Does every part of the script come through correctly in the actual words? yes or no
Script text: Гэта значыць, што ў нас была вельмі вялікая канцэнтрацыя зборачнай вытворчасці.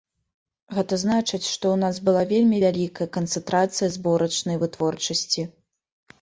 yes